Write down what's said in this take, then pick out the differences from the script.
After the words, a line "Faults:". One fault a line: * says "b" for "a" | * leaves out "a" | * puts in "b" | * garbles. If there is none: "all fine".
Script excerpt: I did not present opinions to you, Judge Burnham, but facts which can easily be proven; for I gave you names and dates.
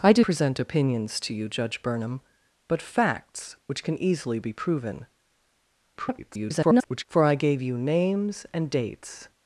I did present opinions to you, Judge Burnham, but facts which can easily be proven; [garbled] for I gave you names and dates.
Faults:
* leaves out "not"
* garbles